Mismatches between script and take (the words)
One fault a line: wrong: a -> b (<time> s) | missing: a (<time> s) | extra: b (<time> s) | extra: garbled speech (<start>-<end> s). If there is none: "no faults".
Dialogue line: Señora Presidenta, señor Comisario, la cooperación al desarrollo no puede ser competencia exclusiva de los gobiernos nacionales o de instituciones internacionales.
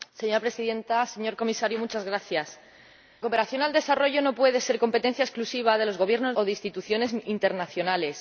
missing: la (1.8 s)
missing: nacionales (6.3 s)